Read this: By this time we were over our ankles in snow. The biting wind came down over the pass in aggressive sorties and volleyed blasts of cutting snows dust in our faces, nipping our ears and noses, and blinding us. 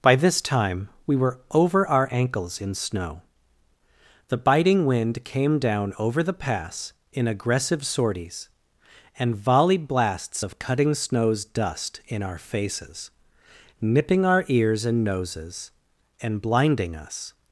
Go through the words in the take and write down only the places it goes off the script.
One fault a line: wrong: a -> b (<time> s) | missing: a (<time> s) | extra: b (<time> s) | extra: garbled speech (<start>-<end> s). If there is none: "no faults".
no faults